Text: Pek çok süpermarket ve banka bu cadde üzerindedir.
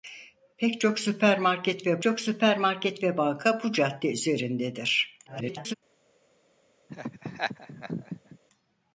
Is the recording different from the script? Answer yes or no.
yes